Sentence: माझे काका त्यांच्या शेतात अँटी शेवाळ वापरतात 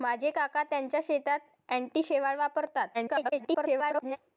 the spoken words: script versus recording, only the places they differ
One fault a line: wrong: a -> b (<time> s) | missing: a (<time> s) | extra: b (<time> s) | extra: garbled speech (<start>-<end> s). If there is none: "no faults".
extra: garbled speech (2.9-4.2 s)